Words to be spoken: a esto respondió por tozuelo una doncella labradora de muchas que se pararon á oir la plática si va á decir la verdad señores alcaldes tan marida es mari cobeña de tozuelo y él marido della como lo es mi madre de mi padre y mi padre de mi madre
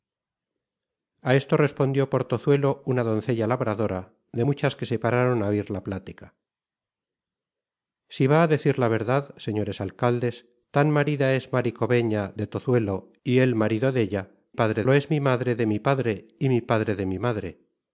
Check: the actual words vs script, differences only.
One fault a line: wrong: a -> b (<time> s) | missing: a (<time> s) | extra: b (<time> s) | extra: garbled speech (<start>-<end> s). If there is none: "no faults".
wrong: como -> padre (14.5 s)